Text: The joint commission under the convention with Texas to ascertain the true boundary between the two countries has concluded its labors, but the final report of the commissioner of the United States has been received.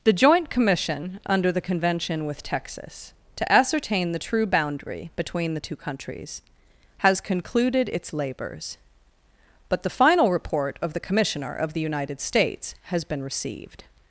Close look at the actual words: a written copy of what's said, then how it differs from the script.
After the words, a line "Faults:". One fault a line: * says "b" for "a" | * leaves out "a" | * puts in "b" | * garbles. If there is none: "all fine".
The joint commission under the convention with Texas to ascertain the true boundary between the two countries has concluded its labors, but the final report of the commissioner of the United States has been received.
Faults:
all fine